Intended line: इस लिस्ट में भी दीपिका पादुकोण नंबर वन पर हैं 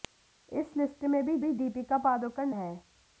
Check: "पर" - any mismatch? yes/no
yes